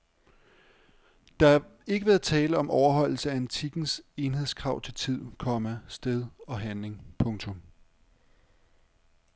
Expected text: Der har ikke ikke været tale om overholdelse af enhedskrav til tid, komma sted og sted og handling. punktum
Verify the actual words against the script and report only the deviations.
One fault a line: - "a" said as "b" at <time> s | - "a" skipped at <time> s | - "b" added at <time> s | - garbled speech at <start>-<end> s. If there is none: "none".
- "ikke" skipped at 2.1 s
- "antikkens" added at 3.4 s
- "sted og" skipped at 6.6 s